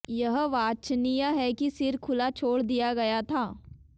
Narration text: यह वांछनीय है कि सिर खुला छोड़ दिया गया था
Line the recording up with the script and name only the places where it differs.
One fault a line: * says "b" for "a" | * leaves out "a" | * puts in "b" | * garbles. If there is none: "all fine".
all fine